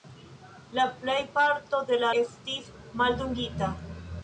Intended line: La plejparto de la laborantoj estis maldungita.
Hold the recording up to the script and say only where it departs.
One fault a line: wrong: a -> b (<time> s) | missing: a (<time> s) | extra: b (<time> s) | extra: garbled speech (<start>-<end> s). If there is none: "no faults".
missing: laborantoj (2.1 s)